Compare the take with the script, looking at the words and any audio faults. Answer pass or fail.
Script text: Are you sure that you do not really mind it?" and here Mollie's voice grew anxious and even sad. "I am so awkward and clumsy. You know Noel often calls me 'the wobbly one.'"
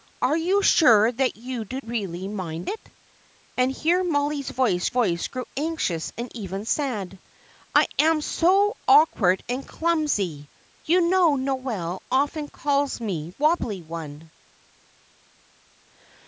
fail